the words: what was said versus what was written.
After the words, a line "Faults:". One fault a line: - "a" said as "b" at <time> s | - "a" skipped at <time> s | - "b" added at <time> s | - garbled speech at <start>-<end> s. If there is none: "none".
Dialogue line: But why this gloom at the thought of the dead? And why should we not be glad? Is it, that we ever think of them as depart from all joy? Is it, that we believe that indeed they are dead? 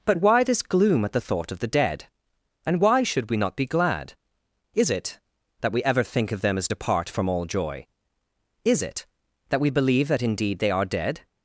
But why this gloom at the thought of the dead? And why should we not be glad? Is it, that we ever think of them as depart from all joy? Is it, that we believe that indeed they are dead?
Faults:
none